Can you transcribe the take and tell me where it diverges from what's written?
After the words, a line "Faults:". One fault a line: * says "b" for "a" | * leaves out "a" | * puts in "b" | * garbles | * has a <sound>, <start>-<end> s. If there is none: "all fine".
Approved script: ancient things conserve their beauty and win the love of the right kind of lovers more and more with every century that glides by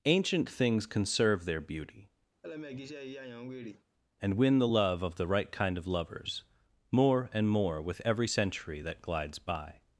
ancient things conserve their beauty and win the love of the right kind of lovers more and more with every century that glides by
Faults:
* has a laugh, 2.4-3.8 s